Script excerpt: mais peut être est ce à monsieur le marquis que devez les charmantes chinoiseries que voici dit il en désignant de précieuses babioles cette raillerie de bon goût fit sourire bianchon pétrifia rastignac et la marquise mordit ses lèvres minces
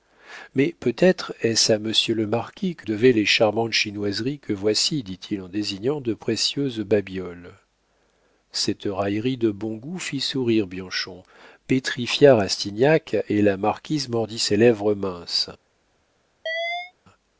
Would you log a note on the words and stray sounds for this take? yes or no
yes